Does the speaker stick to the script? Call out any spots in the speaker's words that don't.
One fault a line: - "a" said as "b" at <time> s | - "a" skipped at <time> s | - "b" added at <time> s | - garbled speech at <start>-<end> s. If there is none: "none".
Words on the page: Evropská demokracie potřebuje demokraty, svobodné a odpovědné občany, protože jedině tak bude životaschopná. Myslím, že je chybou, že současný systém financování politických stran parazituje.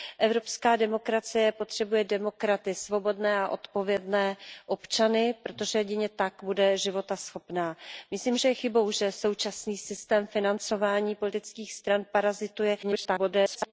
- garbled speech at 12.8-13.7 s